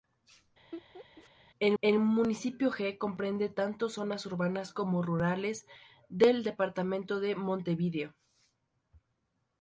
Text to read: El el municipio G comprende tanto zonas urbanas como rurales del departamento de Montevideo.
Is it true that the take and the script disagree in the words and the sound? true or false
true